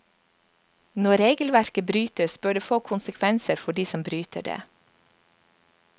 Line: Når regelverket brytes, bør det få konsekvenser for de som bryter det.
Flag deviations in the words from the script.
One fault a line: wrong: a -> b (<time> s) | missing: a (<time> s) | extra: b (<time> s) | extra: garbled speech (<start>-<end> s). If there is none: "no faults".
no faults